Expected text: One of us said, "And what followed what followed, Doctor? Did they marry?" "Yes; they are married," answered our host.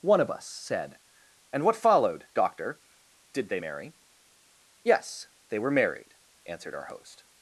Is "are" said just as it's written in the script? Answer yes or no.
no